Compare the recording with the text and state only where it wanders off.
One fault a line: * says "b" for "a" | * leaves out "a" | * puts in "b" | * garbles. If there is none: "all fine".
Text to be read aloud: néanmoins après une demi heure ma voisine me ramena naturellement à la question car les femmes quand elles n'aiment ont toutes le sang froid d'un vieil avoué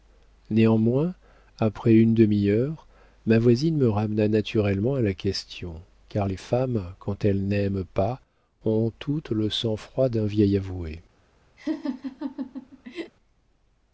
* puts in "pas"